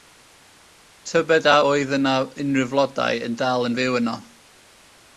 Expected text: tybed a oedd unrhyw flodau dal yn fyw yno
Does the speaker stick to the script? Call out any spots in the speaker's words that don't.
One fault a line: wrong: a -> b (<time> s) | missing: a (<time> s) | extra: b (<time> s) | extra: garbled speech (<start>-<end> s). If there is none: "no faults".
extra: yna (2.0 s)
extra: yn (3.3 s)